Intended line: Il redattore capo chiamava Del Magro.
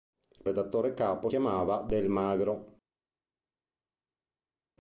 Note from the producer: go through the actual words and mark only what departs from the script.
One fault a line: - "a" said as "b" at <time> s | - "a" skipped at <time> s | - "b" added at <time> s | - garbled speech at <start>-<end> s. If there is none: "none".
none